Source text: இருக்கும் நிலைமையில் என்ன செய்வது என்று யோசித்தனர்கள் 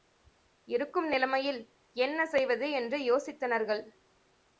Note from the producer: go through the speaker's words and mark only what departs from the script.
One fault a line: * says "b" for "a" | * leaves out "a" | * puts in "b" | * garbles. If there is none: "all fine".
all fine